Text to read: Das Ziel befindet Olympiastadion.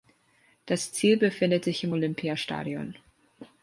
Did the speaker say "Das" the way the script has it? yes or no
yes